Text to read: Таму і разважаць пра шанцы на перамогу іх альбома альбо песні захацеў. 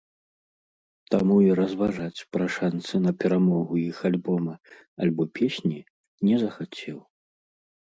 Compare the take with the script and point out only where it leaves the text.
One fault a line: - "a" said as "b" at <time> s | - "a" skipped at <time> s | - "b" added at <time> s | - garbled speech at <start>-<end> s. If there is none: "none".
- "не" added at 6.3 s